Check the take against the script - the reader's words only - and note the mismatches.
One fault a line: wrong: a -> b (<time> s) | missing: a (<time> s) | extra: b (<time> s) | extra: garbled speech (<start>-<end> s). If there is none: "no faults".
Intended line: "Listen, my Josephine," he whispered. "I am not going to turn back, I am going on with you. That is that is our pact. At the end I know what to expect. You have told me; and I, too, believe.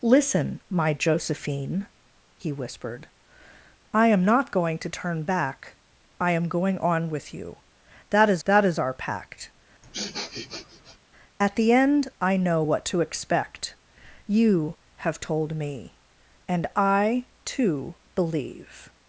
no faults